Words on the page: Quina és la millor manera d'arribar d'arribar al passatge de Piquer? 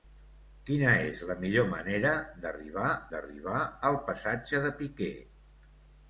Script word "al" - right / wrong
right